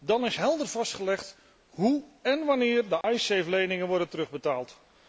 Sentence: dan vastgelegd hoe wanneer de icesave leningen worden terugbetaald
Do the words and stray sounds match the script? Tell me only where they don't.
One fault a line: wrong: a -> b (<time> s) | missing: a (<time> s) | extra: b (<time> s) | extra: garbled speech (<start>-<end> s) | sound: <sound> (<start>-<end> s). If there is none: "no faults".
extra: is helder (0.2 s)
extra: en (2.2 s)
sound: dropout (3.0-3.0 s)